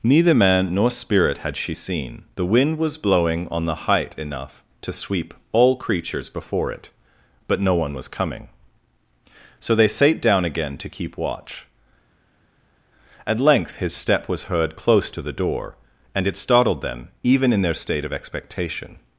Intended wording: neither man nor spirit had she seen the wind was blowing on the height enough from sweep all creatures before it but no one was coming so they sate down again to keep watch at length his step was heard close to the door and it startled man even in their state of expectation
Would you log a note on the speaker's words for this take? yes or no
yes